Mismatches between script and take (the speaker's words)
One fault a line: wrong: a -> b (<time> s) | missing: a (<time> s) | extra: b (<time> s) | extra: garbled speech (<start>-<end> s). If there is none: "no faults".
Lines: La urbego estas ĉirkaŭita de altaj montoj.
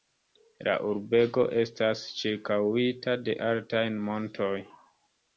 no faults